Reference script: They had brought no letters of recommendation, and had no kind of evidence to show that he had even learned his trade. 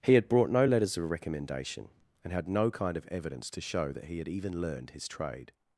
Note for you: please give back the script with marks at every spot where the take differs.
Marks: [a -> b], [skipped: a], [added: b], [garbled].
[They -> He] had brought no letters of recommendation, and had no kind of evidence to show that he had even learned his trade.